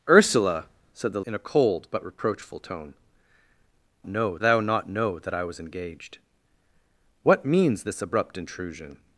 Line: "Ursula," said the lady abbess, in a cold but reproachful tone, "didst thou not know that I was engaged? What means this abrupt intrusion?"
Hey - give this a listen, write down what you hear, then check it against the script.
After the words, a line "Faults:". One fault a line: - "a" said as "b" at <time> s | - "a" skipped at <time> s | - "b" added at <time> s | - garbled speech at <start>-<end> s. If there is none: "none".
"Ursula," said the in a cold but reproachful tone, "know thou not know that I was engaged? What means this abrupt intrusion?"
Faults:
- "lady abbess" skipped at 1.2 s
- "didst" said as "know" at 4.1 s